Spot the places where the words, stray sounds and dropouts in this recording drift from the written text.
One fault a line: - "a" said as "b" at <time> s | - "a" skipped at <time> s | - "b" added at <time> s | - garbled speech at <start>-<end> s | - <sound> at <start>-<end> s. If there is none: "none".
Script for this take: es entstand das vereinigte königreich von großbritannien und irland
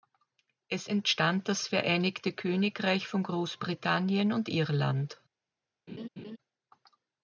- laugh at 5.9-6.4 s